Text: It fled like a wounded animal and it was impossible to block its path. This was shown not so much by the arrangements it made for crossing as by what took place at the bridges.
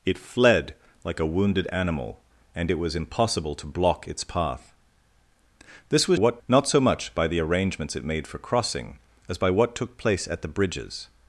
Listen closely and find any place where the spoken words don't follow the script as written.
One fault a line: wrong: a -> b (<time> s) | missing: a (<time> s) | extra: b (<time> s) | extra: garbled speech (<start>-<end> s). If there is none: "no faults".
wrong: shown -> what (6.1 s)